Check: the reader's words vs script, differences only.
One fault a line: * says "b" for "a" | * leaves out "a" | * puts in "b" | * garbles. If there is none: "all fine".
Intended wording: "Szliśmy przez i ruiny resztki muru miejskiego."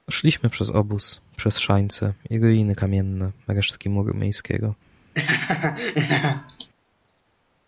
* puts in "obóz przez szańce"
* puts in "kamienne"